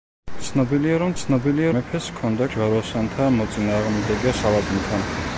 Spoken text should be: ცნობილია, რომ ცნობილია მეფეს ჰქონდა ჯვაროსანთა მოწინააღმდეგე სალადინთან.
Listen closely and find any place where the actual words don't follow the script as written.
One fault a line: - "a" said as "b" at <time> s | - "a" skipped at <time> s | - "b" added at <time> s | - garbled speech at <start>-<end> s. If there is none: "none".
none